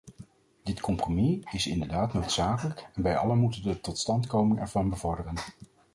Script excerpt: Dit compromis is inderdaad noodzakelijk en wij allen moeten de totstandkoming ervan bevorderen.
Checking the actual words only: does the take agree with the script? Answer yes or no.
yes